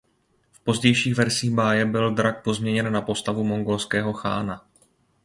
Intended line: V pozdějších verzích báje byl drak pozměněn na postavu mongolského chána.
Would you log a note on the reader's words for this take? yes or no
no